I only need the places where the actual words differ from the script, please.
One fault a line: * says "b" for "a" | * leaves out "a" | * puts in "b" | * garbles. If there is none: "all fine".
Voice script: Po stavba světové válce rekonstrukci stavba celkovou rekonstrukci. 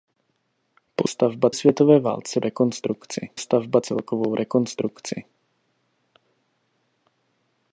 all fine